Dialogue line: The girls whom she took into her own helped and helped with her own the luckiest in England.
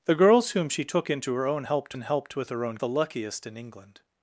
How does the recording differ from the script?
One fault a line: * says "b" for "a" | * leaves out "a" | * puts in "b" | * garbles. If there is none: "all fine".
all fine